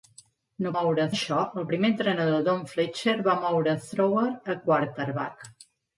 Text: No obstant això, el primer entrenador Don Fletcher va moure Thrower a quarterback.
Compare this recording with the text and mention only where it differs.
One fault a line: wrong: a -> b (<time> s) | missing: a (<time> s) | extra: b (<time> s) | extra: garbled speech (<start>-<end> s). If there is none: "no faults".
wrong: obstant -> moure (0.8 s)